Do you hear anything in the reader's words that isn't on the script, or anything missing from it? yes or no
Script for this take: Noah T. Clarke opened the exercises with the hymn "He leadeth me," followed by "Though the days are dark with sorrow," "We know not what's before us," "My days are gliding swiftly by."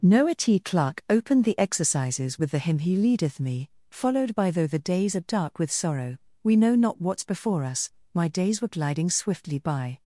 yes